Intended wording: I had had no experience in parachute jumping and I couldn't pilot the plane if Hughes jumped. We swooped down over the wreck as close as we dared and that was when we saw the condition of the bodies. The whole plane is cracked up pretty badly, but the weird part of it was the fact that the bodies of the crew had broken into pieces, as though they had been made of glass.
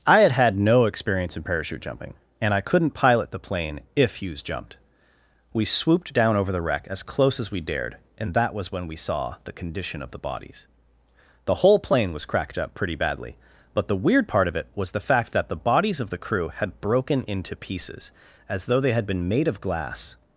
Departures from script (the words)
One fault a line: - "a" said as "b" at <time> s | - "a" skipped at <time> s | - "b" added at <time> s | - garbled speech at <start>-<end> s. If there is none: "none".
- "is" said as "was" at 12.1 s